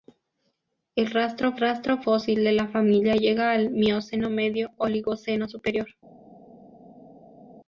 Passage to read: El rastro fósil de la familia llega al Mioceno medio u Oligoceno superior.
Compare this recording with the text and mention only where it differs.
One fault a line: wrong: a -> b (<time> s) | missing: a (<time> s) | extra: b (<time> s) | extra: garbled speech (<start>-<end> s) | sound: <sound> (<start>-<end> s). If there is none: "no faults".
extra: rastro (1.6 s)
missing: u (4.8 s)